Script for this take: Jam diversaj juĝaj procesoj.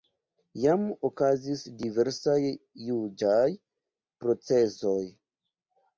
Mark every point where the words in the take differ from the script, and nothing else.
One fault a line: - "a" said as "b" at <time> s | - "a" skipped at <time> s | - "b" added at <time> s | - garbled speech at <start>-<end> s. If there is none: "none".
- "okazis" added at 1.1 s